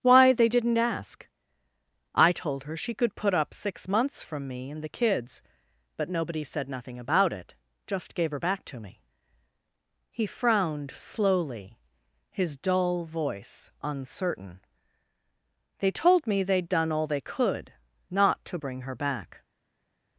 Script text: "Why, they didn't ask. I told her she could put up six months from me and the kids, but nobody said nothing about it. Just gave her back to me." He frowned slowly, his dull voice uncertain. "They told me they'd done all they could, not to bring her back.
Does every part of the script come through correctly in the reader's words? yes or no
yes